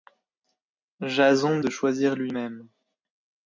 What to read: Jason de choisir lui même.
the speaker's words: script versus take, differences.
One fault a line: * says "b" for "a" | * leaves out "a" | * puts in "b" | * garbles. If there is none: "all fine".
all fine